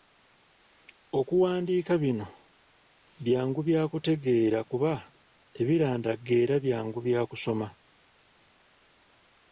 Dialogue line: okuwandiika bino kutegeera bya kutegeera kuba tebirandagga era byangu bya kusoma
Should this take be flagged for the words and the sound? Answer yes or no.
yes